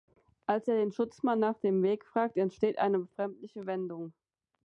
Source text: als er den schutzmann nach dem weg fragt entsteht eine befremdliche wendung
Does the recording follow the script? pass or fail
pass